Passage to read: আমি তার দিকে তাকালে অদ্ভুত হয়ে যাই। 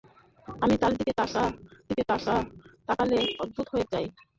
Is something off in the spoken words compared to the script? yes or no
yes